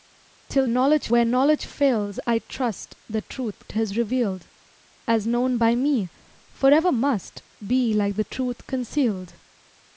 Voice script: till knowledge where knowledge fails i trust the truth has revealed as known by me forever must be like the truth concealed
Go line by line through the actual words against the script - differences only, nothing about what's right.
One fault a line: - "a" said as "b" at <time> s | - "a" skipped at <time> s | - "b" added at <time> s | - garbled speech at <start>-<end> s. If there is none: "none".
none